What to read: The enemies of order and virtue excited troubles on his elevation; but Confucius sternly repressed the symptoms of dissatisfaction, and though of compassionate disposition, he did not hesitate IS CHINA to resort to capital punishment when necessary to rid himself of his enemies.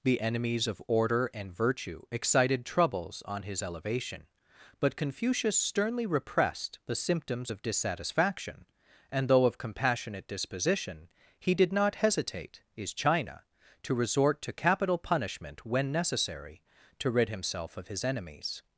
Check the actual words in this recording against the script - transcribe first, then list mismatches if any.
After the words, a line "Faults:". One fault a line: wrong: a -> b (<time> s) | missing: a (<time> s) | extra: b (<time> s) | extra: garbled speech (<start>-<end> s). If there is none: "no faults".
The enemies of order and virtue excited troubles on his elevation; but Confucius sternly repressed the symptoms of dissatisfaction, and though of compassionate disposition, he did not hesitate IS CHINA to resort to capital punishment when necessary to rid himself of his enemies.
Faults:
no faults